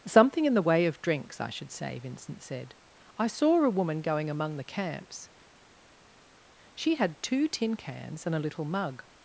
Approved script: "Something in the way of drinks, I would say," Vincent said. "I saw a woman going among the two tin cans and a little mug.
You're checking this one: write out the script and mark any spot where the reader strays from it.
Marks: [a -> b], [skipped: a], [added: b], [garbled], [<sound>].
"Something in the way of drinks, I [would -> should] say," Vincent said. "I saw a woman going among the [added: camps She had] two tin cans and a little mug.